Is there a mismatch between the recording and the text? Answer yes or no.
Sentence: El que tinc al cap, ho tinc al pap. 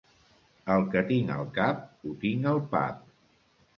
no